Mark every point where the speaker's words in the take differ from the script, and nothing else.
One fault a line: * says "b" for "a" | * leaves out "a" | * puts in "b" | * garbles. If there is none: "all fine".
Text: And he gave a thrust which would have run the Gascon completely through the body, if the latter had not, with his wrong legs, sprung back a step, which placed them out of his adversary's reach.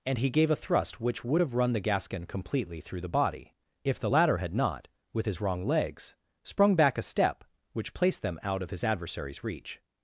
all fine